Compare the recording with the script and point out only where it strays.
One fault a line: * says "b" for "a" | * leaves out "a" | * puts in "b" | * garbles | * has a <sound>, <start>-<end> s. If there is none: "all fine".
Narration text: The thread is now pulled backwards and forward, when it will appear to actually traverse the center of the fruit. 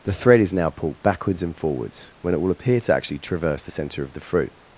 * says "forwards" for "forward"